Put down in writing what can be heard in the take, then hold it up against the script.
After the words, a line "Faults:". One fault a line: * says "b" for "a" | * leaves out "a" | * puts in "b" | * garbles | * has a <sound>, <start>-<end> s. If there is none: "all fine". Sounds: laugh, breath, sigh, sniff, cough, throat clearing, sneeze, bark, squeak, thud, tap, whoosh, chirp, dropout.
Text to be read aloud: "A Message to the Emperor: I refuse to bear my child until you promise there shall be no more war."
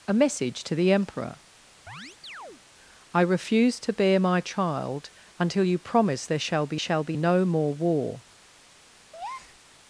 "A Message to the Emperor: I refuse to bear my child until you promise there shall be shall be no more war."
Faults:
* has a chirp, 1.9-2.6 s
* puts in "shall be"
* has a breath, 9.1-9.6 s